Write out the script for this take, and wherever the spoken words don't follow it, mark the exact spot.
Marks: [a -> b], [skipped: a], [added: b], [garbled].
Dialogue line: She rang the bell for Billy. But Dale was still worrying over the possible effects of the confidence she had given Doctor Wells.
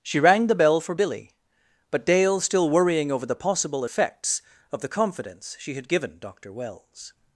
She rang the bell for Billy. But Dale [skipped: was] still worrying over the possible effects of the confidence she had given Doctor Wells.